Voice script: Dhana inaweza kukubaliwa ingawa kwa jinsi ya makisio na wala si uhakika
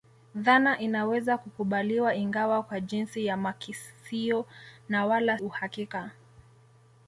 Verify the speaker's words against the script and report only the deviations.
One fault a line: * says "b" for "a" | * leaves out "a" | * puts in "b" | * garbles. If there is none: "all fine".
* leaves out "si"